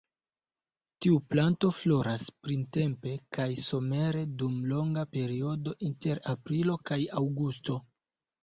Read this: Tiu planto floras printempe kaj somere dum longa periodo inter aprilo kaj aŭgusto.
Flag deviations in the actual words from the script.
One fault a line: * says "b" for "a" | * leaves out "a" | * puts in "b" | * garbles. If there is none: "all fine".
all fine